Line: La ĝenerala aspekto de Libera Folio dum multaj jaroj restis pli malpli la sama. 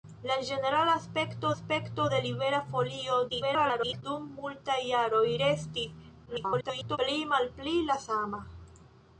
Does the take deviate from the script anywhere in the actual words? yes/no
yes